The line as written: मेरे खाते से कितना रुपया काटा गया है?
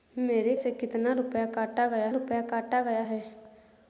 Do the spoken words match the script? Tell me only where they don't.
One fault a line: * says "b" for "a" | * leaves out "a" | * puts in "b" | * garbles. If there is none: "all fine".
* leaves out "खाते"
* puts in "रुपया काटा गया"